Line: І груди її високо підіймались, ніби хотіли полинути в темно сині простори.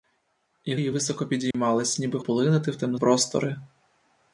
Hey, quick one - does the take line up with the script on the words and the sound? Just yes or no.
no